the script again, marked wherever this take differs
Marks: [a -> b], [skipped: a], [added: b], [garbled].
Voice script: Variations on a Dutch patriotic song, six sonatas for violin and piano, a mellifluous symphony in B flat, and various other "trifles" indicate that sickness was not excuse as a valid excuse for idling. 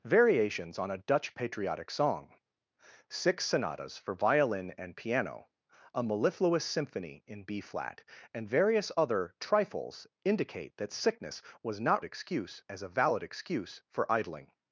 Variations on a Dutch patriotic song, six sonatas for violin and piano, a mellifluous symphony in B flat, and various other "trifles" indicate that sickness was not excuse as a valid excuse for idling.